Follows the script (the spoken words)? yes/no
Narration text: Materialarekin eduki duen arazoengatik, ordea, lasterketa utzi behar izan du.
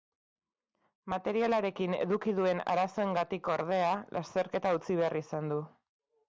yes